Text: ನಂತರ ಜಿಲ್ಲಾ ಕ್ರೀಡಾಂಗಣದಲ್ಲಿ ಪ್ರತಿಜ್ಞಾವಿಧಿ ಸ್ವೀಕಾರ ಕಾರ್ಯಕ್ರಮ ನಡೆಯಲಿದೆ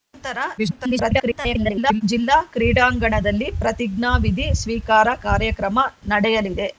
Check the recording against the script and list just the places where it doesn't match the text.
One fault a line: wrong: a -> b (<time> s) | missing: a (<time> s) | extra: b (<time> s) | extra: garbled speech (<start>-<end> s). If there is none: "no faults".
extra: garbled speech (0.6-2.0 s)